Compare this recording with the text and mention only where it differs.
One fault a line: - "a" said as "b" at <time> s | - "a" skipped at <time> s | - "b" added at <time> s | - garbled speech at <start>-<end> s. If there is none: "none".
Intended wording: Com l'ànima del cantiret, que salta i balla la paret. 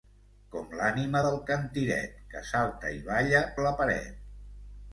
none